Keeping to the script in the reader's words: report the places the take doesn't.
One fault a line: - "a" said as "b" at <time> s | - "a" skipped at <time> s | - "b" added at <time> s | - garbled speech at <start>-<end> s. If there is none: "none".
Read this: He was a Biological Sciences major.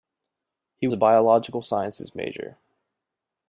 - "was" skipped at 0.9 s